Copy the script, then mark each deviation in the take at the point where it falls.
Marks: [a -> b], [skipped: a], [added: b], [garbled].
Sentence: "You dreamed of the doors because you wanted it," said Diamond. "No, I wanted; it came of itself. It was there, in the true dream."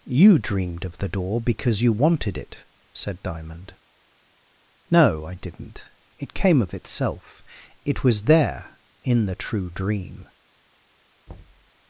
"You dreamed of the [doors -> door] because you wanted it," said Diamond. "No, I [wanted; -> didn't] it came of itself. It was there, in the true dream."